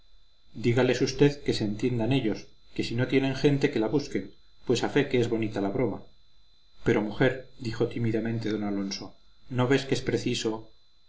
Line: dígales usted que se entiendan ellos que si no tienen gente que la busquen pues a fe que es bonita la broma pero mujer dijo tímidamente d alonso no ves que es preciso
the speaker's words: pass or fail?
pass